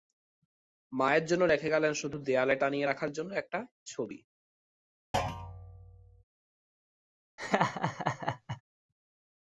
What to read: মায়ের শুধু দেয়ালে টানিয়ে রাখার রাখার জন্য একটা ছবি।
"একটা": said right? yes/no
yes